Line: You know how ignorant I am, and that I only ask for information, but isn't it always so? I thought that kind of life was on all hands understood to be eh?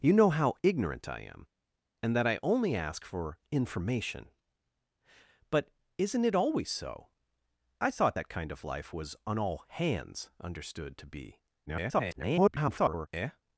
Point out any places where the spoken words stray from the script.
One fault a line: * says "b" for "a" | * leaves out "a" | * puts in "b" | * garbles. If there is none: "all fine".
* garbles